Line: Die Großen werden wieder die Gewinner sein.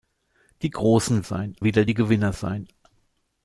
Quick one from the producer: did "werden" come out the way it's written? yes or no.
no